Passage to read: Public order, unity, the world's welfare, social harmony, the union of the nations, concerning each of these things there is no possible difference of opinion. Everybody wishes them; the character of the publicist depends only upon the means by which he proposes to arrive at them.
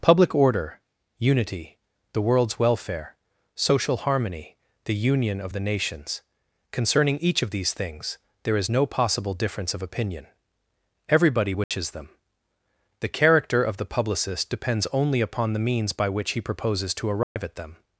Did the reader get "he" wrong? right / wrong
right